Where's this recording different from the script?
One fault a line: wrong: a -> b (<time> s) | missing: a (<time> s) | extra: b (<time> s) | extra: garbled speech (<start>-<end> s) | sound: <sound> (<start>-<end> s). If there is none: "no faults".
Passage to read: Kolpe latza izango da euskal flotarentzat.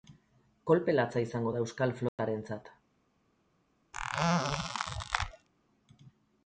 sound: dropout (2.1-2.2 s)
sound: squeak (3.9-5.5 s)